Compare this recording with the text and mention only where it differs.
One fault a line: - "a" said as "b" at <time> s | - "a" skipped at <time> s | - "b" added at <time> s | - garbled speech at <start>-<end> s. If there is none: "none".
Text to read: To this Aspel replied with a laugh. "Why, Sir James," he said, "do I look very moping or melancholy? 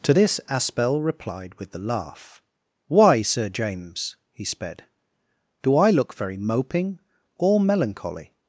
- "a" said as "the" at 1.7 s
- "said" said as "sped" at 4.5 s